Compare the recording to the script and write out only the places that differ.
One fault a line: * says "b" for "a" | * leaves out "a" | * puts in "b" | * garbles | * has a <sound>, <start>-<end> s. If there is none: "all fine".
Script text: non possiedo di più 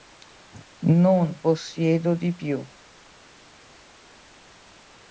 all fine